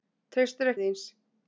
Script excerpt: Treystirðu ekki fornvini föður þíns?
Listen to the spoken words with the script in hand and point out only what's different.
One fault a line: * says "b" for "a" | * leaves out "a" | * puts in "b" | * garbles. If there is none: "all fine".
* leaves out "ekki fornvini föður"